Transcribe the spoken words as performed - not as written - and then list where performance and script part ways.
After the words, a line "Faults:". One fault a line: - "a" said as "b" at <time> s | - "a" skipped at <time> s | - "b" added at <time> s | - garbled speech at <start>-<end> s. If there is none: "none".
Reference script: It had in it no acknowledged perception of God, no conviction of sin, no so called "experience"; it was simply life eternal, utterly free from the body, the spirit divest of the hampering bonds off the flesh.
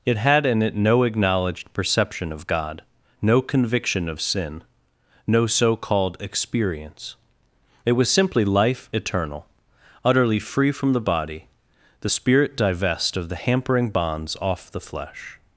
It had in it no acknowledged perception of God, no conviction of sin, no so called "experience"; it was simply life eternal, utterly free from the body, the spirit divest of the hampering bonds off the flesh.
Faults:
none